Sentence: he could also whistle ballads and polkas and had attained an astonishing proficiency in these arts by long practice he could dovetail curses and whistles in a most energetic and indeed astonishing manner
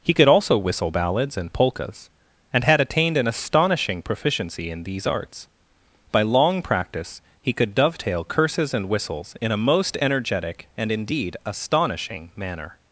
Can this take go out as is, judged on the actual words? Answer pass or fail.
pass